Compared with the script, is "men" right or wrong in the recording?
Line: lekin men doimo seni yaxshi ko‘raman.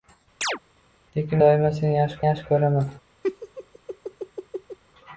wrong